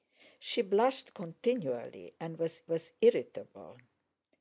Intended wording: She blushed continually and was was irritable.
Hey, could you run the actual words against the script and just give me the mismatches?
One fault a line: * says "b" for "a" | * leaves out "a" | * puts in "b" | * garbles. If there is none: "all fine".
all fine